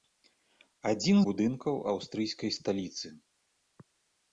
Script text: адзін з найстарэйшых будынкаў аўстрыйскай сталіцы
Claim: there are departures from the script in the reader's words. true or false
true